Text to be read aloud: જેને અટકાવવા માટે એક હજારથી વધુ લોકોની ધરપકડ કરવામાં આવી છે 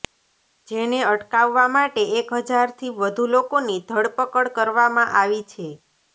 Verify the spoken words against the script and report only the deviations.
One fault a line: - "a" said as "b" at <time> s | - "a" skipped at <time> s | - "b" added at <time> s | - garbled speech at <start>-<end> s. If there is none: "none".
none